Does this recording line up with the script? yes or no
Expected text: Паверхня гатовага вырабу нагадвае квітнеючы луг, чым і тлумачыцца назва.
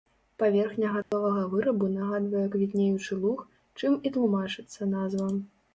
yes